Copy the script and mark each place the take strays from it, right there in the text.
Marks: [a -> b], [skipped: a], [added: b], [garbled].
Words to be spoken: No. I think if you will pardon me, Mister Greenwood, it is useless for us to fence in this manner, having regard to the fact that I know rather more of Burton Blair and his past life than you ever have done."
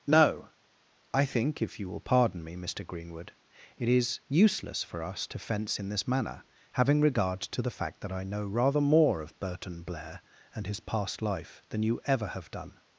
No. I think if you will pardon me, Mister Greenwood, it is useless for us to fence in this manner, having regard to the fact that I know rather more of Burton Blair and his past life than you ever have done."